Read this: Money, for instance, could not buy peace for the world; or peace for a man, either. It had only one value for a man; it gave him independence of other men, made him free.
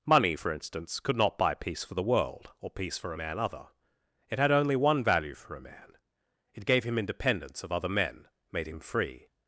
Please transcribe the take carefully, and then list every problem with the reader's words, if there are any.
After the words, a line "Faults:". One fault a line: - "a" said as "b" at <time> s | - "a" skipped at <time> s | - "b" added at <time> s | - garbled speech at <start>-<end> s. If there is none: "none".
Money, for instance, could not buy peace for the world; or peace for a man, other. It had only one value for a man; it gave him independence of other men, made him free.
Faults:
- "either" said as "other" at 3.4 s